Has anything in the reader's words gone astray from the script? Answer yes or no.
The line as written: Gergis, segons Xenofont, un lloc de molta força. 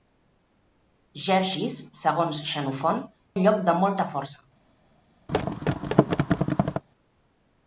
no